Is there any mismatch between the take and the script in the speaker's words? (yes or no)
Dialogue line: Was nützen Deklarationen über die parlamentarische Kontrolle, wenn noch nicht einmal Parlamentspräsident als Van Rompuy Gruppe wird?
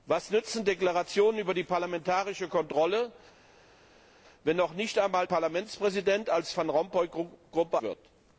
no